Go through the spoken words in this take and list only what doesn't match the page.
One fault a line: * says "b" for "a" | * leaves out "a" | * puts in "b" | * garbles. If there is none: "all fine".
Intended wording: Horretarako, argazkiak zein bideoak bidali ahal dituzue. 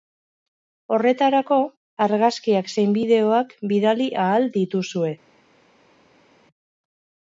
all fine